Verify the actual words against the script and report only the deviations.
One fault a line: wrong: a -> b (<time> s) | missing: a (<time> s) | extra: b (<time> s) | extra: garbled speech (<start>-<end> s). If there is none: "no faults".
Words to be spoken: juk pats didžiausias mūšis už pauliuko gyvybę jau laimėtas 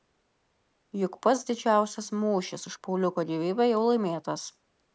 no faults